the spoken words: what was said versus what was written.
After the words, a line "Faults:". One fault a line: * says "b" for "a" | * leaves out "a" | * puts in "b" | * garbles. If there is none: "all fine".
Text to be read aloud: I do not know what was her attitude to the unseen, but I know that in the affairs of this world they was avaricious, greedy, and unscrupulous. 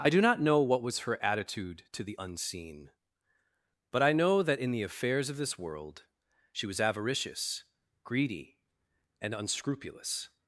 I do not know what was her attitude to the unseen, but I know that in the affairs of this world she was avaricious, greedy, and unscrupulous.
Faults:
* says "she" for "they"